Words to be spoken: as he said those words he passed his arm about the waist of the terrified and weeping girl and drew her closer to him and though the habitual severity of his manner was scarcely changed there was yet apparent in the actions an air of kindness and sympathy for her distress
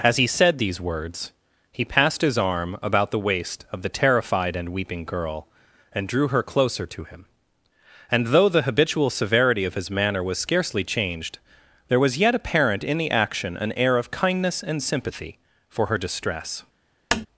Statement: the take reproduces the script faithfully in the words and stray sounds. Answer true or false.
false